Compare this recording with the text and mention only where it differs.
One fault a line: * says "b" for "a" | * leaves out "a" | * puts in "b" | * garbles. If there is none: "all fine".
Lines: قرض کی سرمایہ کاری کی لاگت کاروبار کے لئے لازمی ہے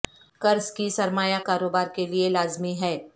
* leaves out "کاری کی لاگت"